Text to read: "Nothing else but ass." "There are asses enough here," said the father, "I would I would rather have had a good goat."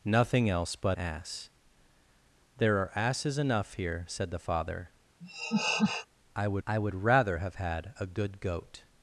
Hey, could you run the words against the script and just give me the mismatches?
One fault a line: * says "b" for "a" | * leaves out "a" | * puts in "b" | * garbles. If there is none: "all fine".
all fine